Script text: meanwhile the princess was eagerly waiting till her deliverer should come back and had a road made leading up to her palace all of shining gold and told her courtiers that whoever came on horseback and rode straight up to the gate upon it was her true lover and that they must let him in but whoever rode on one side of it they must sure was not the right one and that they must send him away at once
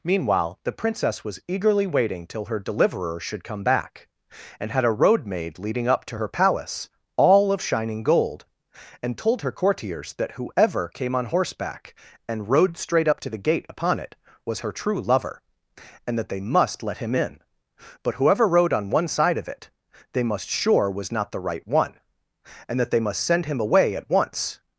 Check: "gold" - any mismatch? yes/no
no